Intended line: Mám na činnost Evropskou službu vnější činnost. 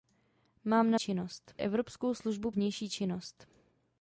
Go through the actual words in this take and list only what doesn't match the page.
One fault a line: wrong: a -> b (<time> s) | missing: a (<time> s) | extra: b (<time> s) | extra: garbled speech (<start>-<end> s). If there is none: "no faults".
no faults